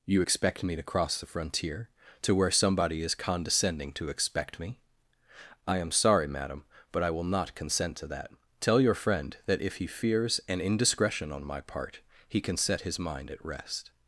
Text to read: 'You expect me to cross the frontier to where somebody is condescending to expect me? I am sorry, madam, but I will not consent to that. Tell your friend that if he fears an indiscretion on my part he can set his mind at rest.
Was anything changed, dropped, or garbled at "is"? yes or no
no